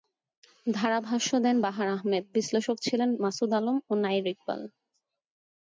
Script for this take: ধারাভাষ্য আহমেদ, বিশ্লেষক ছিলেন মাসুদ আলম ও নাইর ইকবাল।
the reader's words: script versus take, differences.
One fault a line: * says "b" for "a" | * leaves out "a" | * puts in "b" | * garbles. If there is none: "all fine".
* puts in "দেন বাহার"